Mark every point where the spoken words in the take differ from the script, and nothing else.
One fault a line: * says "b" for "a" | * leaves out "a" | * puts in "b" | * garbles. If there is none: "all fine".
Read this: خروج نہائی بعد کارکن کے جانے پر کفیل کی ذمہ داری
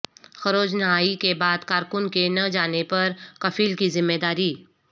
* puts in "کے"
* puts in "نہ"